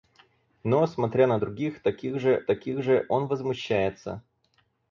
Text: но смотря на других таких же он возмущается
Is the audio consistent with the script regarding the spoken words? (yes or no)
no